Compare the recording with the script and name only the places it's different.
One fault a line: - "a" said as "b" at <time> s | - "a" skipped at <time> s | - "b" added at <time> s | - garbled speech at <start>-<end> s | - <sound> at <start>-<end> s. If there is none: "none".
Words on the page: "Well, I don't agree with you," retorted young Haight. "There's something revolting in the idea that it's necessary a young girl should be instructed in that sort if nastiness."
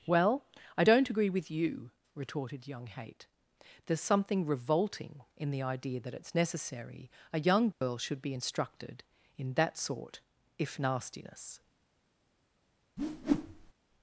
- dropout at 7.7-7.8 s
- whoosh at 13.0-13.7 s